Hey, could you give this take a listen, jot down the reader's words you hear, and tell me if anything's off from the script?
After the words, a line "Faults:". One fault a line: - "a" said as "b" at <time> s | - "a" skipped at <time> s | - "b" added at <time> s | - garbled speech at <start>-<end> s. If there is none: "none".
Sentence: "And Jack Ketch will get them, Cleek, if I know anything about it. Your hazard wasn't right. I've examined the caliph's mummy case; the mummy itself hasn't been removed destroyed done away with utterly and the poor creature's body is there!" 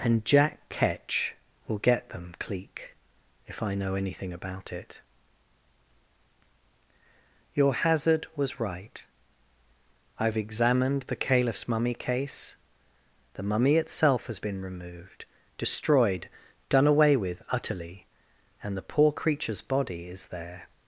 "And Jack Ketch will get them, Cleek, if I know anything about it. Your hazard was right. I've examined the caliph's mummy case; the mummy itself has been removed destroyed done away with utterly and the poor creature's body is there!"
Faults:
- "wasn't" said as "was" at 8.3 s
- "hasn't" said as "has" at 14.2 s